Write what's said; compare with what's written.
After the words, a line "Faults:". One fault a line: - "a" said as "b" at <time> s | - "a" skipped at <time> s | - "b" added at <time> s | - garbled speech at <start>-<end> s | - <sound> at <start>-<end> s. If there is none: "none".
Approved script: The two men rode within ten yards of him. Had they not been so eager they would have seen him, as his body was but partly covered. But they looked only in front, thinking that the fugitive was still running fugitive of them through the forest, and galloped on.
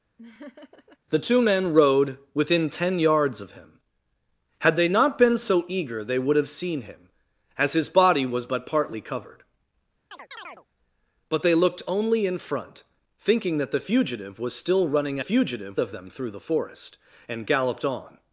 The two men rode within ten yards of him. Had they not been so eager they would have seen him, as his body was but partly covered. But they looked only in front, thinking that the fugitive was still running fugitive of them through the forest, and galloped on.
Faults:
- laugh at 0.2-1.0 s
- chirp at 10.1-10.7 s